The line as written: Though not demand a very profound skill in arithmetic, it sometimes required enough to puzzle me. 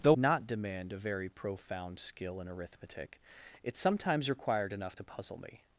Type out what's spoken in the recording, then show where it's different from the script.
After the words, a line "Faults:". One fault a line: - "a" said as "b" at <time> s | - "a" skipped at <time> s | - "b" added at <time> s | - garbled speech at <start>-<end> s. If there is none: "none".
Though not demand a very profound skill in arithmetic, it sometimes required enough to puzzle me.
Faults:
none